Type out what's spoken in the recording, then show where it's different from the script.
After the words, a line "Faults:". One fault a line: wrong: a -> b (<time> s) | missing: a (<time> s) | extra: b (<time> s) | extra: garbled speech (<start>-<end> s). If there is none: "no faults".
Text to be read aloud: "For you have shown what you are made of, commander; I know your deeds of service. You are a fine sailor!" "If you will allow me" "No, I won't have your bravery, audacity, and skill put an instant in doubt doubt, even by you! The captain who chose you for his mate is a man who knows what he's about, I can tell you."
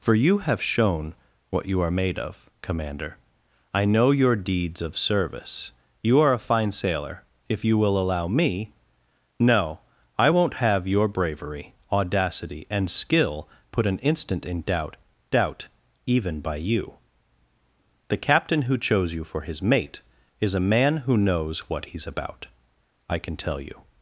"For you have shown what you are made of, commander; I know your deeds of service. You are a fine sailor!" "If you will allow me" "No, I won't have your bravery, audacity, and skill put an instant in doubt doubt, even by you! The captain who chose you for his mate is a man who knows what he's about, I can tell you."
Faults:
no faults